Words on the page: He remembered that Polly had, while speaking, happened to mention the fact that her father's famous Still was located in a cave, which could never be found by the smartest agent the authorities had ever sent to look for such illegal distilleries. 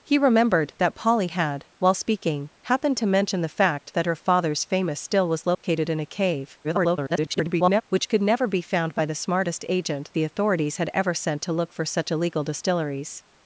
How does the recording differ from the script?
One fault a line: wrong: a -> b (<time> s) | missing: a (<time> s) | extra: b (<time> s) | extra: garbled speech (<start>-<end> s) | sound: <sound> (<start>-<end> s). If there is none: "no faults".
sound: dropout (5.5-5.6 s)
extra: garbled speech (6.6-7.8 s)